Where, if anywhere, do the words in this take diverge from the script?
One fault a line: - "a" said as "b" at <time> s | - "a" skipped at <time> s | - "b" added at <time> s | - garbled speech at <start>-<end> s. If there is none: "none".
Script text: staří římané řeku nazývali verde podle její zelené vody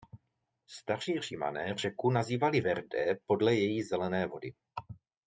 none